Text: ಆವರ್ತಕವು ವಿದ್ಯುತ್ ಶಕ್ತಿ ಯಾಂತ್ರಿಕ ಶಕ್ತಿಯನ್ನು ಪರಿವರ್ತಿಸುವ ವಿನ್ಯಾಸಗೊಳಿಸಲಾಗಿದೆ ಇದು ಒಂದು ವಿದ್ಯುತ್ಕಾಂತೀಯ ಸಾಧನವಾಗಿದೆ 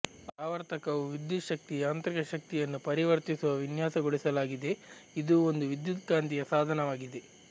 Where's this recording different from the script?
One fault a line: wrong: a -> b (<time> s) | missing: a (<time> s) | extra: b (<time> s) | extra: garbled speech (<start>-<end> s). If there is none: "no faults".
no faults